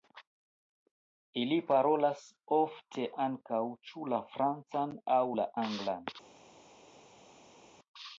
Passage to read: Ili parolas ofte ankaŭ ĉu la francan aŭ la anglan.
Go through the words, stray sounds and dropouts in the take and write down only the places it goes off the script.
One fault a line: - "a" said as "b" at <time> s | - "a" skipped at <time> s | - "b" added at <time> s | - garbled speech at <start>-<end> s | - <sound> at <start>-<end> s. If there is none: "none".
none